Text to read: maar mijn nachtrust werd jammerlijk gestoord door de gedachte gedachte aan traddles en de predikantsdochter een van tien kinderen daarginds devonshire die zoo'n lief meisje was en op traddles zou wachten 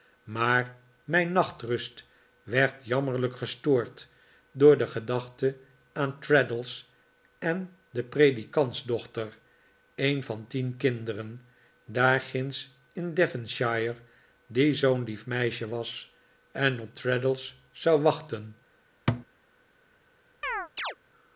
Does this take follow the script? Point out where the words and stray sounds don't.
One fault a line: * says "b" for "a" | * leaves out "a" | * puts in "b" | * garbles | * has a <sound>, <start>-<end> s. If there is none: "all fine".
* leaves out "gedachte"
* puts in "in"
* has a thud, 19.1-19.3 s
* has a chirp, 20.4-21.0 s